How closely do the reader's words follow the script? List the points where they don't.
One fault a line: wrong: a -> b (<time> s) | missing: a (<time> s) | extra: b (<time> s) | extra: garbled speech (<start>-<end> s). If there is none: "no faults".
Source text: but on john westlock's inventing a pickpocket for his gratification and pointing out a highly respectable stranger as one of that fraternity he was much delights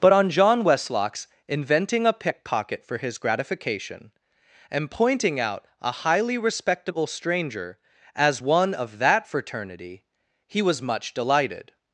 wrong: delights -> delighted (11.1 s)